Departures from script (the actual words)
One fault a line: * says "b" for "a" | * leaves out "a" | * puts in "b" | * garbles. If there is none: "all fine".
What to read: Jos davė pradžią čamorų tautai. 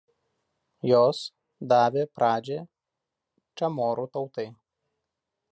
all fine